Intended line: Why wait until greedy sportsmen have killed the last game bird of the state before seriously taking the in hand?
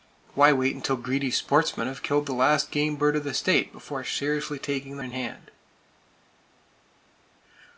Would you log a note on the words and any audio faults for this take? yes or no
no